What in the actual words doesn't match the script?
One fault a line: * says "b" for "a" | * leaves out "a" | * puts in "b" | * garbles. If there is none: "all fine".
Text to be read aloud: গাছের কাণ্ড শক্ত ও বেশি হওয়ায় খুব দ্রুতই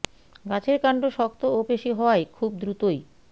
all fine